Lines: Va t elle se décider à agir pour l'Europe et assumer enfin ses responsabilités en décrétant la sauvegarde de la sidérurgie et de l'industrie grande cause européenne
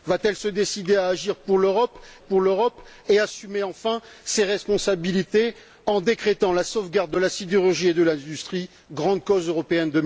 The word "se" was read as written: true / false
true